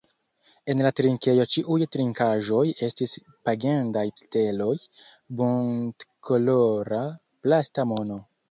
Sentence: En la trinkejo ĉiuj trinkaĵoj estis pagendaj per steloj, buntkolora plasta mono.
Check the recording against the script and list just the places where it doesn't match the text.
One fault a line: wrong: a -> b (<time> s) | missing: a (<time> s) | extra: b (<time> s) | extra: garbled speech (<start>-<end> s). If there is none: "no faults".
missing: per (4.0 s)